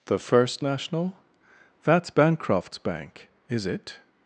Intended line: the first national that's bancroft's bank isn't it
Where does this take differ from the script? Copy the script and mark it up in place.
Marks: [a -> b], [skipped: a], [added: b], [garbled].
the first national that's bancroft's bank [isn't -> is] it